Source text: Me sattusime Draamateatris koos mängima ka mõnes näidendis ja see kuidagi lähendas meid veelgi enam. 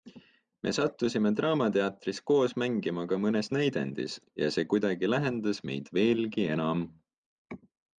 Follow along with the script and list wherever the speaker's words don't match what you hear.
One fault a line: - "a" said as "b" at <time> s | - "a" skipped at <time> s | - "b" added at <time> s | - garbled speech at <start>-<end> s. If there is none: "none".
none